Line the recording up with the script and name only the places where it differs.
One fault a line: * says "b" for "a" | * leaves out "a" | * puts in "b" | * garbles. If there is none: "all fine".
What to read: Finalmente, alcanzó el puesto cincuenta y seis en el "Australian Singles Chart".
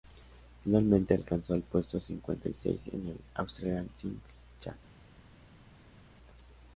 all fine